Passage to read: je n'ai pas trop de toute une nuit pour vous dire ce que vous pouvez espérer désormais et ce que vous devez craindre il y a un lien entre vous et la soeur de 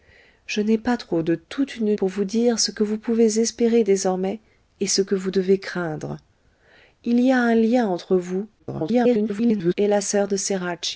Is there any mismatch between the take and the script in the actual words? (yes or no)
yes